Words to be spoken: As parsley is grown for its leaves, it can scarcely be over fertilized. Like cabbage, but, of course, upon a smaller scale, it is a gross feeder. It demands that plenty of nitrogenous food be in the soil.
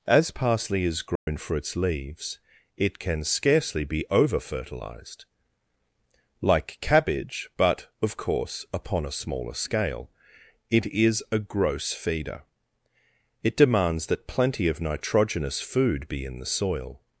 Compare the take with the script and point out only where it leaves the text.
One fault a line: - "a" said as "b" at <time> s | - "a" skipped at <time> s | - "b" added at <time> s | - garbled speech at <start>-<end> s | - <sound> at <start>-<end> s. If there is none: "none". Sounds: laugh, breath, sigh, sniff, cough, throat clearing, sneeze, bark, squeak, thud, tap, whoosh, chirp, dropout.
- dropout at 1.2-1.3 s